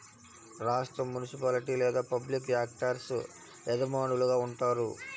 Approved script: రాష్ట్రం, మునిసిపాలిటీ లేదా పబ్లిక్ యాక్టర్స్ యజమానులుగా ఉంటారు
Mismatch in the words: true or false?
false